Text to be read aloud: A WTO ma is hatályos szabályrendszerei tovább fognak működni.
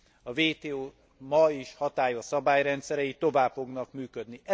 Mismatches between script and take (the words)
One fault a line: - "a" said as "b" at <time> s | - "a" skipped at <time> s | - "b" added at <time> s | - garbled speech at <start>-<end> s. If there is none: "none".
none